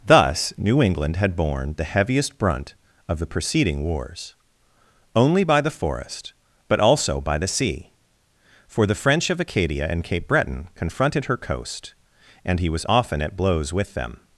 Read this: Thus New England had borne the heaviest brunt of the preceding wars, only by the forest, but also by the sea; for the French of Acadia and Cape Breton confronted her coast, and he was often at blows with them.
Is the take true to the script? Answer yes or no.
yes